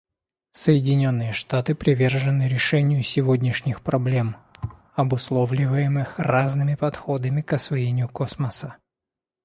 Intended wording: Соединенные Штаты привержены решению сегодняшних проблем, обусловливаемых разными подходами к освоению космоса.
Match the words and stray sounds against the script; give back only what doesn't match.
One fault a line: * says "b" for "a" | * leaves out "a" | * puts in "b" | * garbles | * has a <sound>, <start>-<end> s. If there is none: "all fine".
* has a thud, 4.5-4.8 s